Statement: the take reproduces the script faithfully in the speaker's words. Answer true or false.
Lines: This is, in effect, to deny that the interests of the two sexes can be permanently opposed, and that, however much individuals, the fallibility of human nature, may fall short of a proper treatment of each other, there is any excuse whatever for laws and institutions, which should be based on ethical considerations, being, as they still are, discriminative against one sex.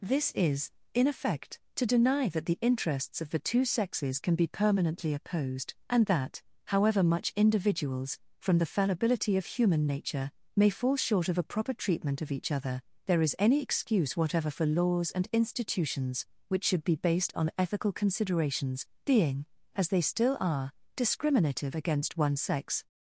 false